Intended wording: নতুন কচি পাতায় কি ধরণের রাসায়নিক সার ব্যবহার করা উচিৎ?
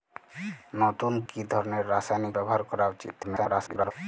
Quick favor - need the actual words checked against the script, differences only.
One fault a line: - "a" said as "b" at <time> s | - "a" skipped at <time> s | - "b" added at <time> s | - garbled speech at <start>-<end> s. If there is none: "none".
- "কচি পাতায়" skipped at 1.1 s
- "সার" skipped at 2.3 s
- garbled speech at 3.2-3.9 s